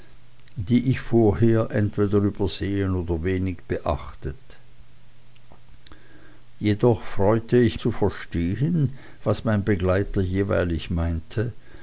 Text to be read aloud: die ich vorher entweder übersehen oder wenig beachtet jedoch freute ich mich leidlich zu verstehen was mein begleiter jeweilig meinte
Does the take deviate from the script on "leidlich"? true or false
true